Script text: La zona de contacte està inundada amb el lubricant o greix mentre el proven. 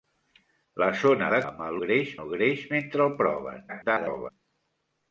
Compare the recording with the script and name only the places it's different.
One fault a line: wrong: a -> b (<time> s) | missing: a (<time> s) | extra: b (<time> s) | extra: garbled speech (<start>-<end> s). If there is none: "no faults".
missing: contacte està inundada (1.4 s)
wrong: lubricant -> greix (1.8 s)
extra: garbled speech (3.7-4.3 s)